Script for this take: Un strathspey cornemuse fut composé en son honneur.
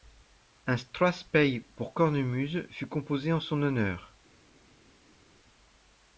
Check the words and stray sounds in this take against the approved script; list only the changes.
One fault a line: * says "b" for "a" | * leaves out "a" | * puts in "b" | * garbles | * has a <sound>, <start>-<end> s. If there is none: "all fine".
* puts in "pour"